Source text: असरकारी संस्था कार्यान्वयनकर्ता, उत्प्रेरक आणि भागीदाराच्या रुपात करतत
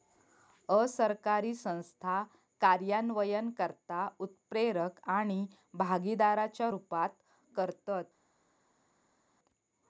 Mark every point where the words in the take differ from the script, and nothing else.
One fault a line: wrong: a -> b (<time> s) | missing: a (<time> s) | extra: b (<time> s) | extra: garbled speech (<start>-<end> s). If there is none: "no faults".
no faults